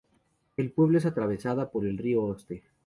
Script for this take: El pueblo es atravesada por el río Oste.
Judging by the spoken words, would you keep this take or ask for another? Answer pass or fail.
pass